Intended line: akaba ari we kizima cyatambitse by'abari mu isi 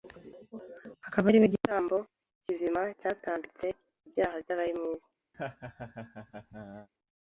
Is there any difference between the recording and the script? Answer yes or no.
yes